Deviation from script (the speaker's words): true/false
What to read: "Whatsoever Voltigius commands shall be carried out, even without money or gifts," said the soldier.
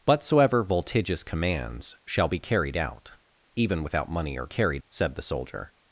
true